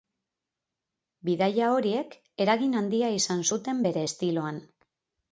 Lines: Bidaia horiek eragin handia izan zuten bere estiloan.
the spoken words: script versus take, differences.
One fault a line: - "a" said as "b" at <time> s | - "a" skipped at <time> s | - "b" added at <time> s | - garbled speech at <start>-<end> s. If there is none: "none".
none